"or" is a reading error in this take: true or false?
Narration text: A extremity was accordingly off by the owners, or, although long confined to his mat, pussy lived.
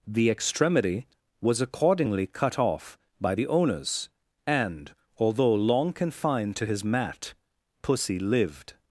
true